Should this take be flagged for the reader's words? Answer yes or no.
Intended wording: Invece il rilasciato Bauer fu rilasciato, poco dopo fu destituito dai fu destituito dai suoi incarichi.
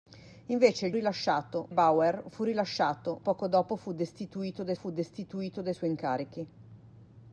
no